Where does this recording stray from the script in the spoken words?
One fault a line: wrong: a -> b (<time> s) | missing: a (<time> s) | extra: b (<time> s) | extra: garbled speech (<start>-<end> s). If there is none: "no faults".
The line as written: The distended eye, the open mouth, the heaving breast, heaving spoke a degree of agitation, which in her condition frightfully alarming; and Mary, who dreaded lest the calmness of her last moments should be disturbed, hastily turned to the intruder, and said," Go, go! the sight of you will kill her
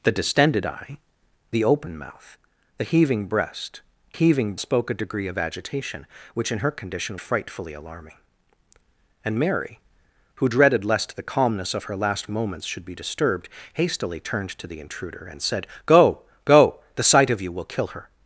no faults